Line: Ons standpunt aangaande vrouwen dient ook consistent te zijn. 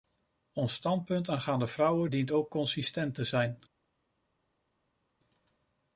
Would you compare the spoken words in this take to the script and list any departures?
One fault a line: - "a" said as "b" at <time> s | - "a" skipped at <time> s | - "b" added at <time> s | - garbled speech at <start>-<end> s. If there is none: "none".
none